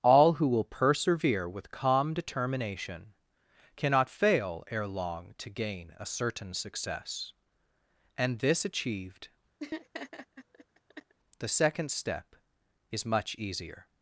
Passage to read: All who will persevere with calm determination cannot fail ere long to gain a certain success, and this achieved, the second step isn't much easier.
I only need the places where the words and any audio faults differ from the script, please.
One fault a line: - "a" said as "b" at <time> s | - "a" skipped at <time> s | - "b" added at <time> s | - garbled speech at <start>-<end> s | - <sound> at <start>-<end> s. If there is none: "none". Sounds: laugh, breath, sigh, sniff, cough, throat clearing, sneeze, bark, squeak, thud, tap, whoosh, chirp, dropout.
- laugh at 9.6-11.1 s
- "isn't" said as "is" at 12.9 s